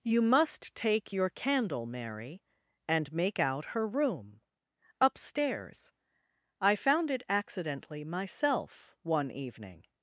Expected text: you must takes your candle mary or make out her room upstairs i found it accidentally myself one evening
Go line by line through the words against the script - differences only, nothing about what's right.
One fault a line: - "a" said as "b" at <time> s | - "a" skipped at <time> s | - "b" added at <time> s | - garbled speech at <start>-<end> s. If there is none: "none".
- "takes" said as "take" at 0.7 s
- "or" said as "and" at 2.9 s